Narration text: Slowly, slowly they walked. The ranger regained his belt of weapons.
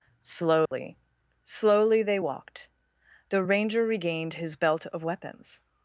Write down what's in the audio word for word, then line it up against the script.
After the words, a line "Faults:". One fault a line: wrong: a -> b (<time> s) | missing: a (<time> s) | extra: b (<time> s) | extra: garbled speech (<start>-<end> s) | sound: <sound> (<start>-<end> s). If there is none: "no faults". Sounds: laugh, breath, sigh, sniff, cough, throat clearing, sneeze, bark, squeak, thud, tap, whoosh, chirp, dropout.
Slowly, slowly they walked. The ranger regained his belt of weapons.
Faults:
sound: dropout (0.7-0.7 s)